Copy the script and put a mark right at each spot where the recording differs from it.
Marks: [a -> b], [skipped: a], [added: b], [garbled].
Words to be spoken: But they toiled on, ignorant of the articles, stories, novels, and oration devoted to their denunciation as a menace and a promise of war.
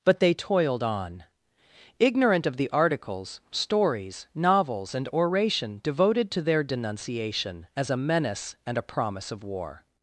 But they toiled on, ignorant of the articles, stories, novels, and oration devoted to their denunciation as a menace and a promise of war.